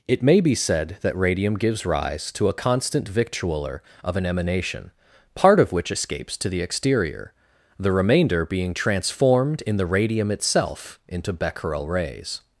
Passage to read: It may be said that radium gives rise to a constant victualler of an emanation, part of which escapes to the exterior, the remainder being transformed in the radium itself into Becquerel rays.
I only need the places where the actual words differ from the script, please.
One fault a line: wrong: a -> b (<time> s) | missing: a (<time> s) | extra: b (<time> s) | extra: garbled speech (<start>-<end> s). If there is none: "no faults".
no faults